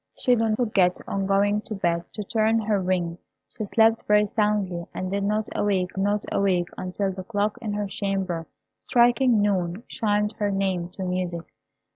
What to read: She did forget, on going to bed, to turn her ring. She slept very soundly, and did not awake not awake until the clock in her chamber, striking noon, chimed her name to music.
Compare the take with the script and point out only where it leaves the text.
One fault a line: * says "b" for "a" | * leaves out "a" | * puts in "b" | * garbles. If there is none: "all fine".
all fine